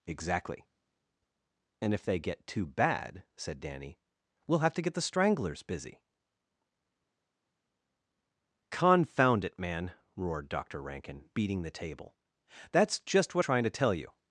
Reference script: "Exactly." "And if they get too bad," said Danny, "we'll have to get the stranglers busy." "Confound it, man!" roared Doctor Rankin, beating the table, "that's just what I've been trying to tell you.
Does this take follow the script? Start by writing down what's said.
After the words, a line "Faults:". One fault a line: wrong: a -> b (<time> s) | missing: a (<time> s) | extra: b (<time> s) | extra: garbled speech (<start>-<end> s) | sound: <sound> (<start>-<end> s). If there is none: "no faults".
"Exactly." "And if they get too bad," said Danny, "we'll have to get the stranglers busy." "Confound it, man!" roared Doctor Rankin, beating the table, "that's just what Trying to tell you.
Faults:
missing: I've been (13.4 s)